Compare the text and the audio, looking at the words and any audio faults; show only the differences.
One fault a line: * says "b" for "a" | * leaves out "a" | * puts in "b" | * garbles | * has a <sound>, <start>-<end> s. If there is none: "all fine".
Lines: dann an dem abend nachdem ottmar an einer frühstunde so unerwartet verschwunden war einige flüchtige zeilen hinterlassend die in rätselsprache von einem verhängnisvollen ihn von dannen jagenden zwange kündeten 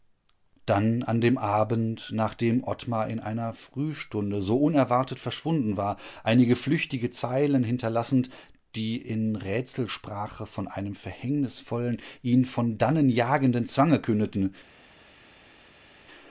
* says "in" for "an"